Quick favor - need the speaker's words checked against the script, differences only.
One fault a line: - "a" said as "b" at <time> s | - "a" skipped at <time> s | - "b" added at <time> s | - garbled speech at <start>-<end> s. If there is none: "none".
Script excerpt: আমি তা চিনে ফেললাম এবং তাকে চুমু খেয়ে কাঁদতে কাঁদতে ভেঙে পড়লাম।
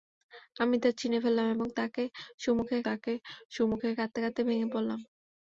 - "তাকে চুমু খেয়ে" added at 2.9 s